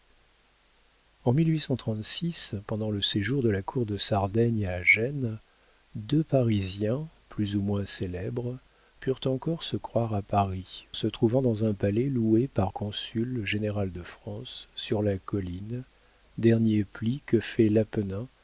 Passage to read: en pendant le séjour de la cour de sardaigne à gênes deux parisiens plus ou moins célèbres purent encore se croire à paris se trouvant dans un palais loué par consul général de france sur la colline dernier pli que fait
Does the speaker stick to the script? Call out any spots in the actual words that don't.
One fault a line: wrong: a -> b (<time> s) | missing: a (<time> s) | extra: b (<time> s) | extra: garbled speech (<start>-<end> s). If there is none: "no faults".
no faults